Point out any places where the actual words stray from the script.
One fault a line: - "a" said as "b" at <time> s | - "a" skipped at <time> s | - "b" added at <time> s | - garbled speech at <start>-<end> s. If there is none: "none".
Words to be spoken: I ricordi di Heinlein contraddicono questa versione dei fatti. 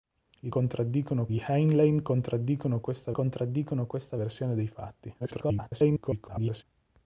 - "ricordi" said as "contraddicono" at 0.5 s
- "contraddicono questa" added at 3.1 s
- garbled speech at 5.2-6.6 s